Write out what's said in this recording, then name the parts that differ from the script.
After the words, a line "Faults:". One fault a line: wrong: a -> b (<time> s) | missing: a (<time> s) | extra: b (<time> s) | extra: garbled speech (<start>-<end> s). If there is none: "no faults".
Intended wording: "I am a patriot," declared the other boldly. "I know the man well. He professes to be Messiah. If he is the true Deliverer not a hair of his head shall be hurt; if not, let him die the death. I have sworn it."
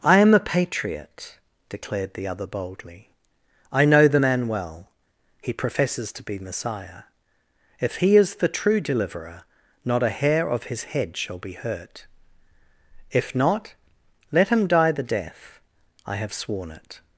"I am a patriot," declared the other boldly. "I know the man well. He professes to be Messiah. If he is the true Deliverer not a hair of his head shall be hurt; if not, let him die the death. I have sworn it."
Faults:
no faults